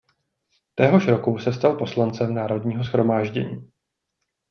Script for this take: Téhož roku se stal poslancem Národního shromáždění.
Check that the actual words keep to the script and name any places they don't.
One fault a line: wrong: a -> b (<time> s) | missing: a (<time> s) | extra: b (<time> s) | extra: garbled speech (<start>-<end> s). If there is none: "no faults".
no faults